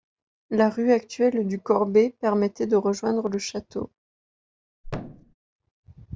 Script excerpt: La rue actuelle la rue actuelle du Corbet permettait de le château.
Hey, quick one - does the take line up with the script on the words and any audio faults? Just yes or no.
no